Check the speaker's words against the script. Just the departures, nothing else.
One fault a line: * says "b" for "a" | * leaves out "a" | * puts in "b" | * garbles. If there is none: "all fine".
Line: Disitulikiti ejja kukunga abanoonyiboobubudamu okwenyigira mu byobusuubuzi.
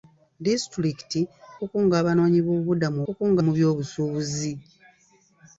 * leaves out "ejja"
* says "kukunga" for "okwenyigira"